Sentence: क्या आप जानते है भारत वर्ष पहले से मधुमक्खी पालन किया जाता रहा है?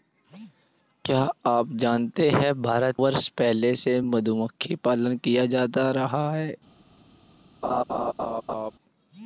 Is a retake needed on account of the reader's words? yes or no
no